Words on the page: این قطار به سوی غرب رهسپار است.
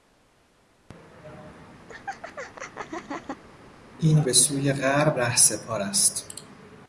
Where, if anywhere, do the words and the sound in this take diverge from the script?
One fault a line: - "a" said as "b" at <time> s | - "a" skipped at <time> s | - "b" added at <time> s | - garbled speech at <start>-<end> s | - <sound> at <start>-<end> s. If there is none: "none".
- laugh at 1.9-3.4 s
- "قطار" skipped at 4.2 s